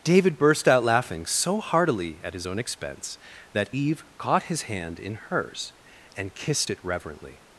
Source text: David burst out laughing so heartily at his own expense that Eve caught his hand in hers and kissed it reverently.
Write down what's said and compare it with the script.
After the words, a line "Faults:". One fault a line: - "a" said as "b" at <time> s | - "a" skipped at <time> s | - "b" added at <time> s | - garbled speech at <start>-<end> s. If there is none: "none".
David burst out laughing so heartily at his own expense that Eve caught his hand in hers and kissed it reverently.
Faults:
none